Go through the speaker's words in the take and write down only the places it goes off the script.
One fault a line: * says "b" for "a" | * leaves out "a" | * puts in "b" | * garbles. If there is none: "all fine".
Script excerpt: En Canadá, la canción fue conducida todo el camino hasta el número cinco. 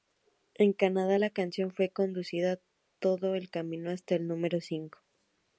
all fine